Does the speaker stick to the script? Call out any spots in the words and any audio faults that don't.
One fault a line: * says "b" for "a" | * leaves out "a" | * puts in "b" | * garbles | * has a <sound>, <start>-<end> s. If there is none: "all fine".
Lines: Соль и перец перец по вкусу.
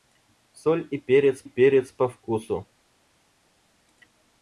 all fine